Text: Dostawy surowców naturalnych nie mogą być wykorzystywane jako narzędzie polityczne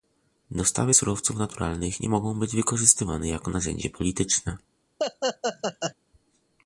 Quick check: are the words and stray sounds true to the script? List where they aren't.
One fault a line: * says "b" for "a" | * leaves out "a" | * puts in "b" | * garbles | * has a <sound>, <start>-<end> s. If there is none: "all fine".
* has a laugh, 5.0-5.9 s